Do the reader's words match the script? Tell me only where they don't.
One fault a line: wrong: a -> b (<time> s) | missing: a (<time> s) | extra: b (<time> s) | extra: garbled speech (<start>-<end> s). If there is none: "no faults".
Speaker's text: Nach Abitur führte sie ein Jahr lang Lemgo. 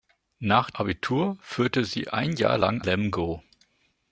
no faults